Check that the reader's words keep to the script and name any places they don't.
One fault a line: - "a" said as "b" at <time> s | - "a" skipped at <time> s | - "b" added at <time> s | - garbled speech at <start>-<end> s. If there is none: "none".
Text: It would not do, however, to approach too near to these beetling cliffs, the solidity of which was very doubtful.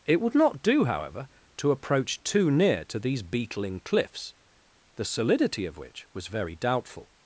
none